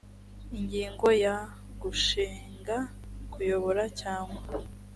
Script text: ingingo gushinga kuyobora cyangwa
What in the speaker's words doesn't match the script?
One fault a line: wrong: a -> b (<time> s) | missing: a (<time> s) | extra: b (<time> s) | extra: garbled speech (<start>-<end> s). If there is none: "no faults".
extra: ya (1.2 s)